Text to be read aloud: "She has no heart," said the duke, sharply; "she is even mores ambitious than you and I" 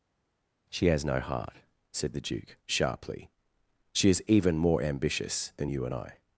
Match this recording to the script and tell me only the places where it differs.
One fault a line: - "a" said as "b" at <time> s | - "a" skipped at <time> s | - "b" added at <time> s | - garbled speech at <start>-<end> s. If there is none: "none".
- "mores" said as "more" at 4.6 s